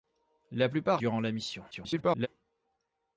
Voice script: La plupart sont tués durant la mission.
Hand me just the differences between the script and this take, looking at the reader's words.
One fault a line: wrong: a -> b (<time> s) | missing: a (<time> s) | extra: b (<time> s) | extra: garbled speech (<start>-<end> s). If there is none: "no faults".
missing: sont tués (1.0 s)
extra: garbled speech (1.7-2.3 s)